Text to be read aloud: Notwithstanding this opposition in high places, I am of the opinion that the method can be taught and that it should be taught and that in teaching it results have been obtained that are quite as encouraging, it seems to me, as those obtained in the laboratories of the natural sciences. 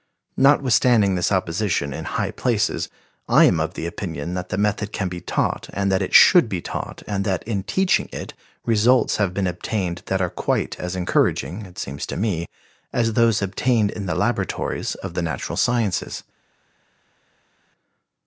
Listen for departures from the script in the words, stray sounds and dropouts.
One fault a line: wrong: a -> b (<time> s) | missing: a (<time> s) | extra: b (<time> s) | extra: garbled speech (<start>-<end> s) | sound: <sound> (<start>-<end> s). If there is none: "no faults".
no faults